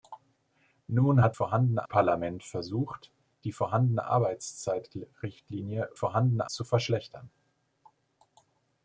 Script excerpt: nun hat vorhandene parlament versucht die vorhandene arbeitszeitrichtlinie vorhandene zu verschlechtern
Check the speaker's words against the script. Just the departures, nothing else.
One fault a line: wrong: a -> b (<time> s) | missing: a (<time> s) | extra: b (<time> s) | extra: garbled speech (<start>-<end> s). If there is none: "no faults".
no faults